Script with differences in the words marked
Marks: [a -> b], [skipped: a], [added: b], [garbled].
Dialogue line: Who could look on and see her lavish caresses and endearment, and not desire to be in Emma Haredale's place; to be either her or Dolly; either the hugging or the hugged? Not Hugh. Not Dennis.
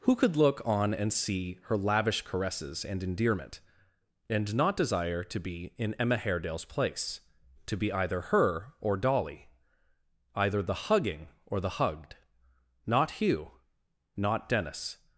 Who could look on and see her lavish caresses and endearment, and not desire to be in Emma Haredale's place; to be either her or Dolly; either the hugging or the hugged? Not Hugh. Not Dennis.